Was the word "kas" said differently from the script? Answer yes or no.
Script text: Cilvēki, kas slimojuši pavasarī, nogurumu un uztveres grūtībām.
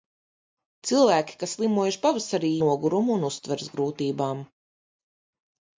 no